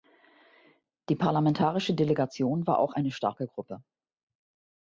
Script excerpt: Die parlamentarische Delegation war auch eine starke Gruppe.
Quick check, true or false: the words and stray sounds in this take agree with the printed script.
true